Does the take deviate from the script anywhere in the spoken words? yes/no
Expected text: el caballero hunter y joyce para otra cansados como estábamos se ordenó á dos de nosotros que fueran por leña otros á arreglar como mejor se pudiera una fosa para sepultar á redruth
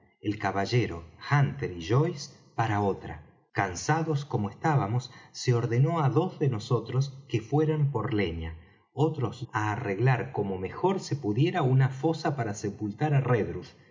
no